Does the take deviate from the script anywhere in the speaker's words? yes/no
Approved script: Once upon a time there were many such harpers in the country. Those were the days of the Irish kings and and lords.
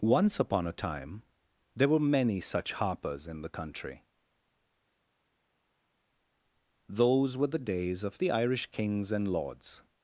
yes